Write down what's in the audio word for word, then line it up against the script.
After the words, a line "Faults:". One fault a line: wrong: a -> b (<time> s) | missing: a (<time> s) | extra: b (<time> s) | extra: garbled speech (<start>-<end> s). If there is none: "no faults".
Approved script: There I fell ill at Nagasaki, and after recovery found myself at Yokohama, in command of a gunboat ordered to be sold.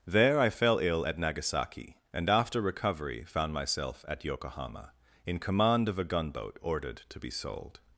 There I fell ill at Nagasaki, and after recovery found myself at Yokohama, in command of a gunboat ordered to be sold.
Faults:
no faults